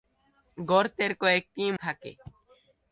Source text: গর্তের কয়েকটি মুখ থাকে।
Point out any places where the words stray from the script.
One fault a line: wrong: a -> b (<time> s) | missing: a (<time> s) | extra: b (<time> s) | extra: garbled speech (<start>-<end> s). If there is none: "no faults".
missing: মুখ (1.6 s)